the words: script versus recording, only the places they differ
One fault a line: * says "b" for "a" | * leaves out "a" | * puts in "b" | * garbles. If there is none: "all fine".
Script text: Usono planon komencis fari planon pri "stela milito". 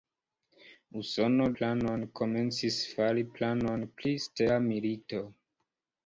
all fine